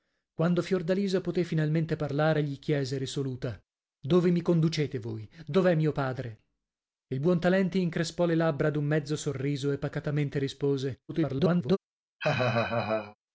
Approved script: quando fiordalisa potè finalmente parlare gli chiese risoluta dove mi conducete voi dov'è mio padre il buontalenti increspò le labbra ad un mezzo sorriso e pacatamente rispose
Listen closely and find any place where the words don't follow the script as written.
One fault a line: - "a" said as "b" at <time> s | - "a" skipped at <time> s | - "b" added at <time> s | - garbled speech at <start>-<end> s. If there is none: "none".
- garbled speech at 11.1-11.8 s